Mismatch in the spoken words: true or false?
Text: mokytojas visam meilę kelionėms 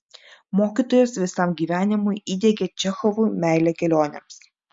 true